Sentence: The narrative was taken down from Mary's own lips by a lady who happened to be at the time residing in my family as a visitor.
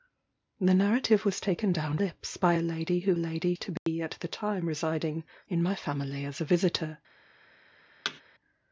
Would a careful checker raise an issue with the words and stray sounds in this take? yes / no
yes